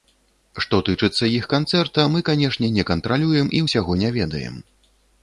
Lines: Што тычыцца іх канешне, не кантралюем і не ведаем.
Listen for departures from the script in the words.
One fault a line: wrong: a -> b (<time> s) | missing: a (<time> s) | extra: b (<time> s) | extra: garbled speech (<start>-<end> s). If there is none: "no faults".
extra: канцэрта мы (1.5 s)
extra: ўсяго (3.6 s)